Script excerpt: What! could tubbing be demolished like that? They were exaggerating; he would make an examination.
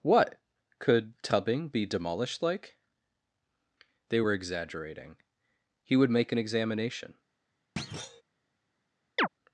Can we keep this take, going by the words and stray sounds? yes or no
no